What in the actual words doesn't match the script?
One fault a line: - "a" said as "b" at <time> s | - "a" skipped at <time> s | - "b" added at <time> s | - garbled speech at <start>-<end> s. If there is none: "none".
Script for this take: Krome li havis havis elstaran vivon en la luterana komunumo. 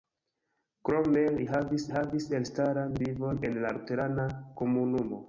none